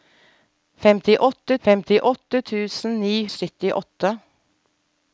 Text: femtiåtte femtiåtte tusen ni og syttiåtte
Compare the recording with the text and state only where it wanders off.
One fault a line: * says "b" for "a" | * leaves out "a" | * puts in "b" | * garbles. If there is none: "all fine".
all fine